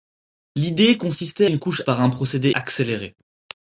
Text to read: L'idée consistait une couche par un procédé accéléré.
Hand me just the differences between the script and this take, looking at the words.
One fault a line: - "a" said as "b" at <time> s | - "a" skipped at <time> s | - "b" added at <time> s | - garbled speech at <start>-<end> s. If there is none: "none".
none